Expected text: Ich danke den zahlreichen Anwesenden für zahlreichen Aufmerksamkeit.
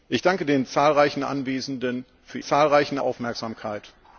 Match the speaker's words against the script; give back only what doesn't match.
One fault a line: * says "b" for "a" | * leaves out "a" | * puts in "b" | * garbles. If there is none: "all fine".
all fine